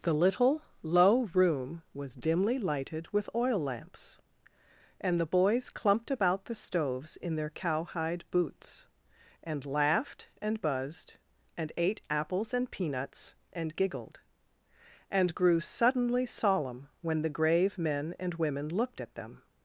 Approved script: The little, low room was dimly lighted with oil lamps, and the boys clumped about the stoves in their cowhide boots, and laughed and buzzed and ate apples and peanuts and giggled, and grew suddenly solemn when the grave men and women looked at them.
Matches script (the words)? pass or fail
pass